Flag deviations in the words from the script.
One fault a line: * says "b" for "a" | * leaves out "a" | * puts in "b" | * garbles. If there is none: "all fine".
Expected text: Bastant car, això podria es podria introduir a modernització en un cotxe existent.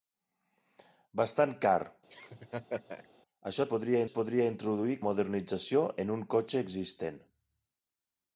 all fine